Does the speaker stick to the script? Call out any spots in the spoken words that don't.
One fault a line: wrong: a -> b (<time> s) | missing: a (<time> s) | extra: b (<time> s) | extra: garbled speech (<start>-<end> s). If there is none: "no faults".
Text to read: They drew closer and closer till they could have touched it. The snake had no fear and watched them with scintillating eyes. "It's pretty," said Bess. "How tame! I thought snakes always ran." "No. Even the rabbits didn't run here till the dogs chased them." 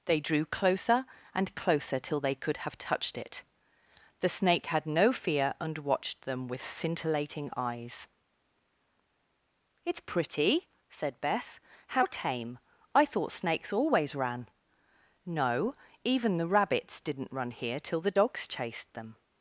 no faults